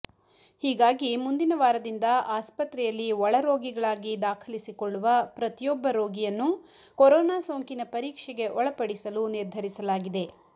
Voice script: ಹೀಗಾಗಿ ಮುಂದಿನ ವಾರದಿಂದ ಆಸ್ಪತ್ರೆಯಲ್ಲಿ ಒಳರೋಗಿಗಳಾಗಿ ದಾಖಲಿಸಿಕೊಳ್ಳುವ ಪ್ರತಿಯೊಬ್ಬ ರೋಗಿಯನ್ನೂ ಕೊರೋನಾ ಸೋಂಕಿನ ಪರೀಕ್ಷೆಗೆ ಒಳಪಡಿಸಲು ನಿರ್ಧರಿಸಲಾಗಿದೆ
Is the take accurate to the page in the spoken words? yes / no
yes